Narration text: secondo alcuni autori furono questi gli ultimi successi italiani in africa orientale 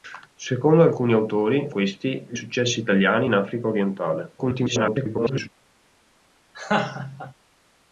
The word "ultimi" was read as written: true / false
false